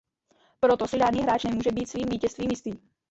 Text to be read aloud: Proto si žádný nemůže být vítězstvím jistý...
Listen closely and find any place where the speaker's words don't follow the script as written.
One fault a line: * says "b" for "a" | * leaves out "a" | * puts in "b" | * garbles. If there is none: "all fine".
* puts in "hráč"
* puts in "svým"